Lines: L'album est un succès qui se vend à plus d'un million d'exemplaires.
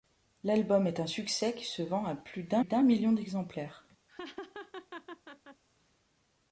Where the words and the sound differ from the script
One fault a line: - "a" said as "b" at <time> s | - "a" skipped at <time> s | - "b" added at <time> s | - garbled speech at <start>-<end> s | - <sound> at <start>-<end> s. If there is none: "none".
- "d'un" added at 2.6 s
- laugh at 4.1-5.6 s